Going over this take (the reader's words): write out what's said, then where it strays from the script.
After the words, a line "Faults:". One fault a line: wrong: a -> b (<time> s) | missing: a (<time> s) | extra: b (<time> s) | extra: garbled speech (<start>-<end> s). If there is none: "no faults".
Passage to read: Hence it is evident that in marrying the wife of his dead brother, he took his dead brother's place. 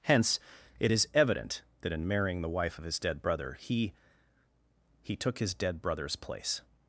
Hence it is evident that in marrying the wife of his dead brother, he he took his dead brother's place.
Faults:
extra: he (5.0 s)